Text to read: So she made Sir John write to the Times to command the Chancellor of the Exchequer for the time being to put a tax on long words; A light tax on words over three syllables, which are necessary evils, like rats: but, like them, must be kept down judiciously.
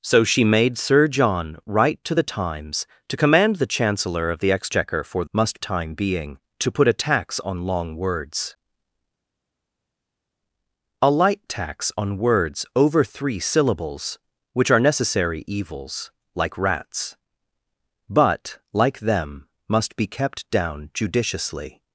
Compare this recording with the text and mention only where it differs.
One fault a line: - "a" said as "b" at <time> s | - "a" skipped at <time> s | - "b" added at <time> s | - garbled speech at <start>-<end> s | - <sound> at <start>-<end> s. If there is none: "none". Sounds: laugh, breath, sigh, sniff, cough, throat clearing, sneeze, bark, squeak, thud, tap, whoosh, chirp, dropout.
- "the" said as "must" at 5.3 s